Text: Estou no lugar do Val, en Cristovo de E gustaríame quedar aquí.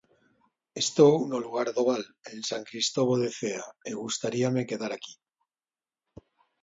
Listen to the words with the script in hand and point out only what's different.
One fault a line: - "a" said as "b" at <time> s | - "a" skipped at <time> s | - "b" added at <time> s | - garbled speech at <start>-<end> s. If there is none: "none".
- "San" added at 2.5 s
- "Cea" added at 3.4 s